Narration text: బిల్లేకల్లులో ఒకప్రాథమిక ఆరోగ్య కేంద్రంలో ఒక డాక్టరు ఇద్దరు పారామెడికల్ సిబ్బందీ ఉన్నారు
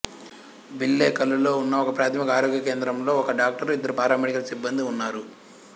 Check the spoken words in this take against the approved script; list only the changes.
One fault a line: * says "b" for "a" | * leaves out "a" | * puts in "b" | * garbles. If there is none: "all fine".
* puts in "ఉన్న"